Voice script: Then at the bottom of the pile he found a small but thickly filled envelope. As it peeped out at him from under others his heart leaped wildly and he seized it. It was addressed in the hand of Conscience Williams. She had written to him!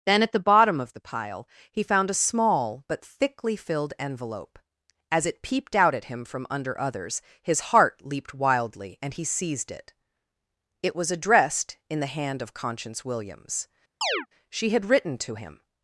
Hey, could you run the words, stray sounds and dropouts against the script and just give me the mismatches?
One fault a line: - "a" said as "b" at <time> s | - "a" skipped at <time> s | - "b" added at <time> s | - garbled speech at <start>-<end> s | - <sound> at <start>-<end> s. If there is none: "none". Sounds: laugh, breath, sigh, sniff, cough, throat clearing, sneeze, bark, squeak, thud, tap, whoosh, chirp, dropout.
- chirp at 14.0-14.3 s